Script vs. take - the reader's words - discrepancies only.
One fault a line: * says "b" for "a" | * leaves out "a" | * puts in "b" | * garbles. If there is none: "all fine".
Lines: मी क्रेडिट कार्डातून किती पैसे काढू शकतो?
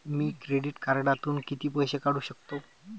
all fine